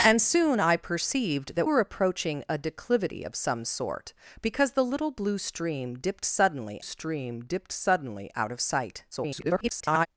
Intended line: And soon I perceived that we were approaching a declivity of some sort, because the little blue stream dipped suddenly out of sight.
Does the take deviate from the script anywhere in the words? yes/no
yes